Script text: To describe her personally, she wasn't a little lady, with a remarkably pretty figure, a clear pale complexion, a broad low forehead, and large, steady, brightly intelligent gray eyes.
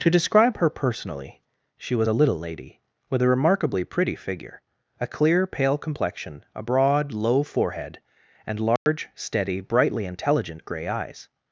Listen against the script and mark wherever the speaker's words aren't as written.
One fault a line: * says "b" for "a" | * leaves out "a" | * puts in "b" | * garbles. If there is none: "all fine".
* says "was" for "wasn't"